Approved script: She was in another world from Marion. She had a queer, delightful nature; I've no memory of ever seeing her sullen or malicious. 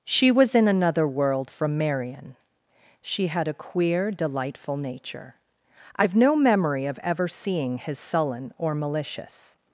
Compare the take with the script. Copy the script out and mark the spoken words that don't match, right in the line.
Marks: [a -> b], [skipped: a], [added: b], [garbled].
She was in another world from Marion. She had a queer, delightful nature; I've no memory of ever seeing [her -> his] sullen or malicious.